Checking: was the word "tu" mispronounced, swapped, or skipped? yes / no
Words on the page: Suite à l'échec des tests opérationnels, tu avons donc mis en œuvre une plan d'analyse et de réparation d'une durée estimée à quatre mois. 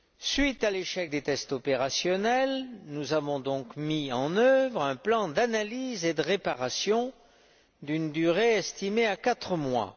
yes